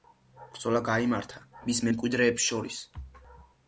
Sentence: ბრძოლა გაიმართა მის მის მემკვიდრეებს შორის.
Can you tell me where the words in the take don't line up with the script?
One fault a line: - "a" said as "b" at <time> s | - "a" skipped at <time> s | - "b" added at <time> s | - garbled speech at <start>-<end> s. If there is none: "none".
- "მის" skipped at 1.9 s